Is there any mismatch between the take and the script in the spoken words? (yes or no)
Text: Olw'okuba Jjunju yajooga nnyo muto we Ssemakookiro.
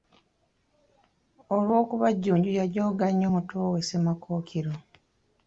no